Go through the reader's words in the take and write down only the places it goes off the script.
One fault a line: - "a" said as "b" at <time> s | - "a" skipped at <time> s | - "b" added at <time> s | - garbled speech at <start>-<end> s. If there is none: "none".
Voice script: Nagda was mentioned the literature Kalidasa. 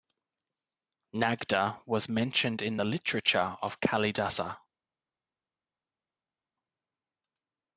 - "in" added at 2.6 s
- "of" added at 3.6 s